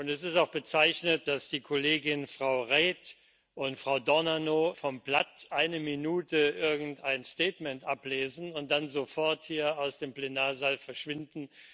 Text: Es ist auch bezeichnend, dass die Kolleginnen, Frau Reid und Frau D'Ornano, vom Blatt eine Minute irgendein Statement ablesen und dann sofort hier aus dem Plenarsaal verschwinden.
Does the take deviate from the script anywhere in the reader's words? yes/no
no